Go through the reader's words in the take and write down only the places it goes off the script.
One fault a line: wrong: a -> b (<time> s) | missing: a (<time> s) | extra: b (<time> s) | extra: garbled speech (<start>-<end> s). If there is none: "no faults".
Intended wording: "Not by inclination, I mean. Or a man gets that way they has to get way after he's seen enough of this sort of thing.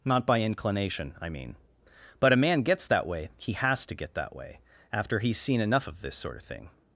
wrong: Or -> But (2.2 s)
wrong: they -> he (3.4 s)
extra: that (4.1 s)